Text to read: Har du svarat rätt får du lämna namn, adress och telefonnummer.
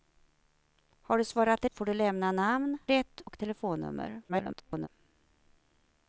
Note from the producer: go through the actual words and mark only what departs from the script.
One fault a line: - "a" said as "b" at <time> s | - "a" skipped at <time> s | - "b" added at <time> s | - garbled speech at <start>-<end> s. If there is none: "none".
- "rätt" skipped at 1.6 s
- "adress" said as "rätt" at 2.8 s
- garbled speech at 4.3-4.9 s